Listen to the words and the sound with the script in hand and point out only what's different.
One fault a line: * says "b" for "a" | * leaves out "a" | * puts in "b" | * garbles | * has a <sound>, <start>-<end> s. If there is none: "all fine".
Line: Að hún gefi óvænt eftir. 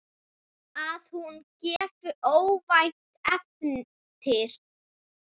* has a dropout, 1.8-1.8 s